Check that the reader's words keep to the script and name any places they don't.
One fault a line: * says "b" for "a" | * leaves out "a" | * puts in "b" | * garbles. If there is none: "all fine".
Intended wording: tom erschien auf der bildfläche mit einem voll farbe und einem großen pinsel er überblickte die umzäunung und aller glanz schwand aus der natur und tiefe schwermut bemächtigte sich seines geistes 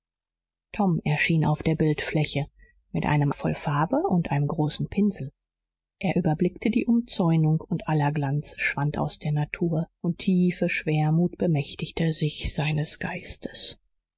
all fine